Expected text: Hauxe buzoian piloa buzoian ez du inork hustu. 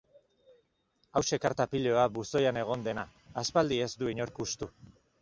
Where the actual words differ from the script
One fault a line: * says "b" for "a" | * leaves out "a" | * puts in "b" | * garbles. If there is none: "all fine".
* says "karta" for "buzoian"
* puts in "egon dena aspaldi"